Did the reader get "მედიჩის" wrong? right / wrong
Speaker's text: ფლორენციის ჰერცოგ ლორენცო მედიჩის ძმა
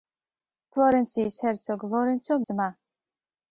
wrong